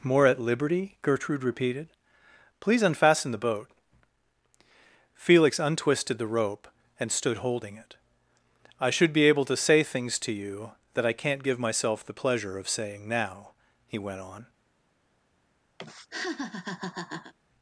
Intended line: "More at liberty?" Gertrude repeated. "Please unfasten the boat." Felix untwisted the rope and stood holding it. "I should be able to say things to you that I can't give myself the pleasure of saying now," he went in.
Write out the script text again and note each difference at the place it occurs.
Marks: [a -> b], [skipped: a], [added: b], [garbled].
"More at liberty?" Gertrude repeated. "Please unfasten the boat." Felix untwisted the rope and stood holding it. "I should be able to say things to you that I can't give myself the pleasure of saying now," he went [in. -> on]